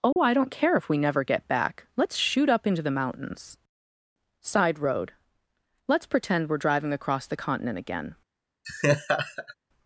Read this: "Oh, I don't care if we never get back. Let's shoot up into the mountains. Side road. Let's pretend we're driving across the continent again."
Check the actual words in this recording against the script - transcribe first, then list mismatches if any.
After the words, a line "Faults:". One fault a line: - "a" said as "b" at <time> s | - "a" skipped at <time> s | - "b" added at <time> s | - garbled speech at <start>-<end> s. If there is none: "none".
"Oh, I don't care if we never get back. Let's shoot up into the mountains. Side road. Let's pretend we're driving across the continent again."
Faults:
none